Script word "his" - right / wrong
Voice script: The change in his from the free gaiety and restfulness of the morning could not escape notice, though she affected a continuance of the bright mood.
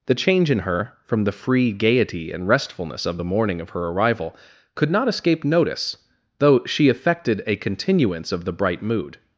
wrong